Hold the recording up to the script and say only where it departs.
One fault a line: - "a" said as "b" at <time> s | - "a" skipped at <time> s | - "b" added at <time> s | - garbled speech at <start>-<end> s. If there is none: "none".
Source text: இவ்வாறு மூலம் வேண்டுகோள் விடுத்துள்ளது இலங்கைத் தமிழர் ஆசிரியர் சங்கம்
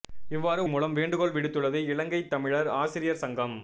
none